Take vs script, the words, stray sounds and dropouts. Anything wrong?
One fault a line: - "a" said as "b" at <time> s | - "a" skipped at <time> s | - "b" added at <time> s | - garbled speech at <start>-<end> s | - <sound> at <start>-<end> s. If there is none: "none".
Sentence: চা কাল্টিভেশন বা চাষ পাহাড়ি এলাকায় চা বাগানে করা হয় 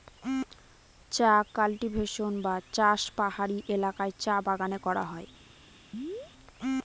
- chirp at 5.9-6.3 s